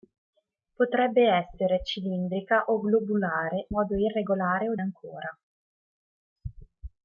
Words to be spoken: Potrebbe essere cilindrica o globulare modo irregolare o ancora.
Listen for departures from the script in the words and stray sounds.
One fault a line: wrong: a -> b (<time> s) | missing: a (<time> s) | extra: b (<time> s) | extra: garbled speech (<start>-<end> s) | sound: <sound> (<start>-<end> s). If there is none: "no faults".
no faults